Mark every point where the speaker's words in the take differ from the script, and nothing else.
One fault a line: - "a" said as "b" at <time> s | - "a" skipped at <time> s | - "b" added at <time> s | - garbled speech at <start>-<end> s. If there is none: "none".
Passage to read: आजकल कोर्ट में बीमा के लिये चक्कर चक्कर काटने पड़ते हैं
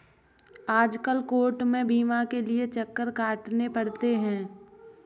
- "चक्कर" skipped at 3.1 s